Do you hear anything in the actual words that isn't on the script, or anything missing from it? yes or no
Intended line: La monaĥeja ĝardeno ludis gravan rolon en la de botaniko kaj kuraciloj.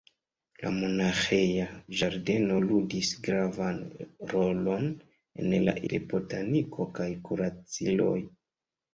no